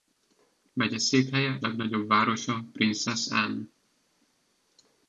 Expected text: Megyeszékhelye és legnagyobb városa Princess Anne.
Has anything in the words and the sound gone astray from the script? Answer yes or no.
yes